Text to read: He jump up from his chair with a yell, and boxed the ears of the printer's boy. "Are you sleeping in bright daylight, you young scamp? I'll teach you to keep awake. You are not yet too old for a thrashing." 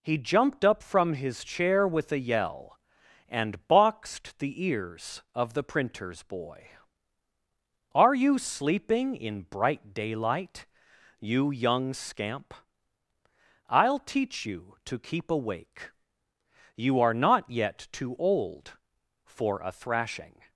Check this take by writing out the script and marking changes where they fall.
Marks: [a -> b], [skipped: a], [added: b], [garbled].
He [jump -> jumped] up from his chair with a yell, and boxed the ears of the printer's boy. "Are you sleeping in bright daylight, you young scamp? I'll teach you to keep awake. You are not yet too old for a thrashing."